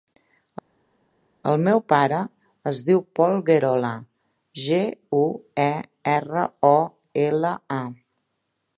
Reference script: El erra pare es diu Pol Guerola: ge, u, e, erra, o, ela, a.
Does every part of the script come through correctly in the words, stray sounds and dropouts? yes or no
no